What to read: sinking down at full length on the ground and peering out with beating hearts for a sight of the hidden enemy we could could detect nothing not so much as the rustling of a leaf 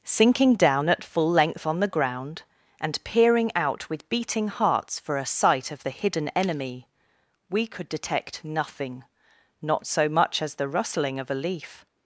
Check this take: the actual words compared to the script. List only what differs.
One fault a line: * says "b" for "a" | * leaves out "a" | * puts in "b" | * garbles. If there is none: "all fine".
* leaves out "could"